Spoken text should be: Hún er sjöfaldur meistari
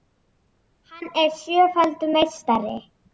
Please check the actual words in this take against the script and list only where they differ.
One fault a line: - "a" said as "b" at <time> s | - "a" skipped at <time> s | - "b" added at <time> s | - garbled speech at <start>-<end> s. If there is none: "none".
- "Hún" said as "Hann" at 0.9 s